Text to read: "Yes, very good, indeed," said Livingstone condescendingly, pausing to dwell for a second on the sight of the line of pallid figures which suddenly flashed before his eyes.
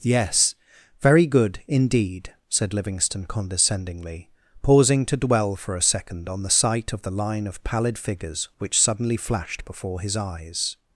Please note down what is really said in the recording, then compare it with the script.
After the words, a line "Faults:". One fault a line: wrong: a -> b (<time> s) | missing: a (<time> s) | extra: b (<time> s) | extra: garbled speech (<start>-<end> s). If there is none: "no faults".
"Yes, very good, indeed," said Livingstone condescendingly, pausing to dwell for a second on the sight of the line of pallid figures which suddenly flashed before his eyes.
Faults:
no faults